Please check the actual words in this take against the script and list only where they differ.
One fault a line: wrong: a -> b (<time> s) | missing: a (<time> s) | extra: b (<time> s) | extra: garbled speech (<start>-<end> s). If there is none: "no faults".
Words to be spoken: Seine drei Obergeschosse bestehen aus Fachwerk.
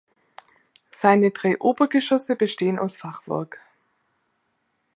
no faults